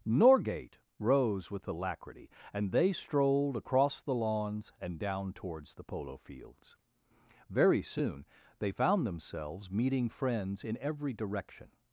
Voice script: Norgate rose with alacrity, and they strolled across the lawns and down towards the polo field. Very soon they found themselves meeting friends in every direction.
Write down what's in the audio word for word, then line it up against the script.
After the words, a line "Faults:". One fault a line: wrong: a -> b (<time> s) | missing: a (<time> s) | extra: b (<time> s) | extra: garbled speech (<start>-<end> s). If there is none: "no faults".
Norgate rose with alacrity, and they strolled across the lawns and down towards the polo fields. Very soon they found themselves meeting friends in every direction.
Faults:
wrong: field -> fields (6.2 s)